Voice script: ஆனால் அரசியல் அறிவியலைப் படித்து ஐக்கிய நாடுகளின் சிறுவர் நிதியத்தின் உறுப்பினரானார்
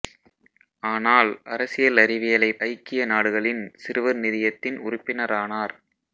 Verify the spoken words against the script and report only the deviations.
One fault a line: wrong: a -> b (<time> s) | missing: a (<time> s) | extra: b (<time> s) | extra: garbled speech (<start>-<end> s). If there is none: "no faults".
missing: படித்து (2.6 s)